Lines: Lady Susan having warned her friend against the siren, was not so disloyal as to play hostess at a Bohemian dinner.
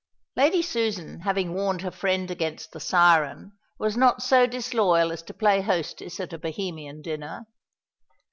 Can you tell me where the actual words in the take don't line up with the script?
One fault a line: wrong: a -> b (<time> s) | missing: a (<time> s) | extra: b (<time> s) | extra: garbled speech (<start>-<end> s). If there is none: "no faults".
no faults